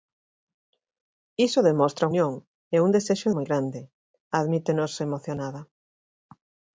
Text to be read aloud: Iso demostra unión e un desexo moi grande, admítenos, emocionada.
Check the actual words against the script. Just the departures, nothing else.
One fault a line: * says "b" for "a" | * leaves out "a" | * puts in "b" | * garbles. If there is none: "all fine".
all fine